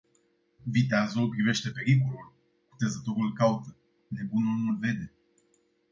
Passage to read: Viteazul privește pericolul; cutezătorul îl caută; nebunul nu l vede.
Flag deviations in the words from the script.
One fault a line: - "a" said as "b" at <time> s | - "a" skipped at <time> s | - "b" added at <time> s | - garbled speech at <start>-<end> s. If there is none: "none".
none